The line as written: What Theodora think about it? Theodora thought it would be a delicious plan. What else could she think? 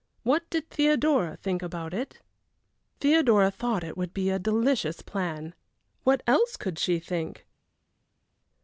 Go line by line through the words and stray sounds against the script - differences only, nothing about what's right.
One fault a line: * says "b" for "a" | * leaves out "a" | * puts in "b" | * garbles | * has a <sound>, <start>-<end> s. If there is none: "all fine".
* puts in "did"